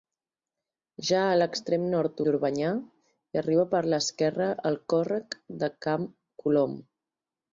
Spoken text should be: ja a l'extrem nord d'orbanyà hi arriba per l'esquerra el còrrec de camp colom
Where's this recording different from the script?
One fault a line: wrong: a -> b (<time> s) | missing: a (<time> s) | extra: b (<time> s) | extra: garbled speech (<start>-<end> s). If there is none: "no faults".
no faults